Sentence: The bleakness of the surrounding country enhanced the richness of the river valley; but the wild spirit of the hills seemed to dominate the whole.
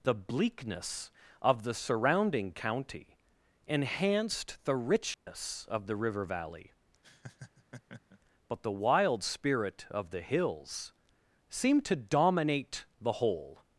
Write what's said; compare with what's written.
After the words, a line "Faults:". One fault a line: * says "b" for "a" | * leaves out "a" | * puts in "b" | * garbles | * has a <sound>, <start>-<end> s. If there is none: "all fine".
The bleakness of the surrounding county enhanced the richness of the river valley; but the wild spirit of the hills seemed to dominate the whole.
Faults:
* says "county" for "country"
* has a dropout, 5.1-5.3 s
* has a laugh, 7.0-8.2 s